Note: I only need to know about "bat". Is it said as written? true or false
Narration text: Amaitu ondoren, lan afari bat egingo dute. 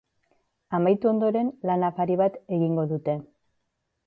true